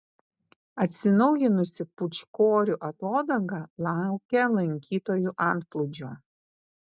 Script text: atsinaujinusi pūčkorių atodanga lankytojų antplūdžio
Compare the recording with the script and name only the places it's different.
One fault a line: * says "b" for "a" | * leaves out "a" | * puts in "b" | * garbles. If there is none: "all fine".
* puts in "laukia"